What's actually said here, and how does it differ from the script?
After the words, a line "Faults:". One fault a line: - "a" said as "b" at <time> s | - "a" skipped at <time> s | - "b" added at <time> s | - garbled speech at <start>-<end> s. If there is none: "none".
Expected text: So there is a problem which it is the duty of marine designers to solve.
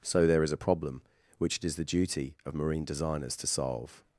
So there is a problem which it is the duty of marine designers to solve.
Faults:
none